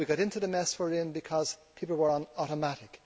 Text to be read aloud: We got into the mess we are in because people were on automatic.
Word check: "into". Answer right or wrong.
right